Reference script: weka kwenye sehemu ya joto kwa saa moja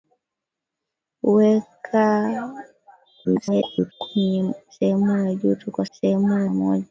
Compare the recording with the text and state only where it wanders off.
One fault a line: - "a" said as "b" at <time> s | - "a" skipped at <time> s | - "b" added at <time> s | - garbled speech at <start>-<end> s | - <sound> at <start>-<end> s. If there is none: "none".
- garbled speech at 3.2-3.9 s
- "saa" said as "sehemu" at 5.9 s